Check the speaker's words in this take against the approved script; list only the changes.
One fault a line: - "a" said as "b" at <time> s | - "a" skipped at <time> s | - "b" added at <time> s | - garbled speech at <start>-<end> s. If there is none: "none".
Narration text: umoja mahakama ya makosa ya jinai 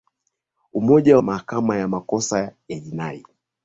none